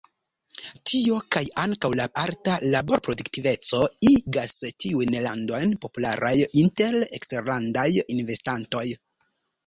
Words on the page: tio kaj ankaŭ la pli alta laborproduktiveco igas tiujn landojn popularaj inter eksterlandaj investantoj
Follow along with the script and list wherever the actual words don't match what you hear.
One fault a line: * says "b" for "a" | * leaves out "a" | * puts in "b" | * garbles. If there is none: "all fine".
* leaves out "pli"